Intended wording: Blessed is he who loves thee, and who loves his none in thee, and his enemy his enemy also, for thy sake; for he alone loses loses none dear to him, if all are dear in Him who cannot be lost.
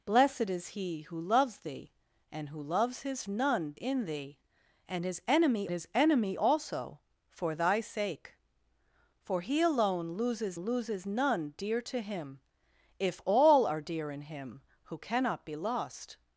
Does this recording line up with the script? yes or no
yes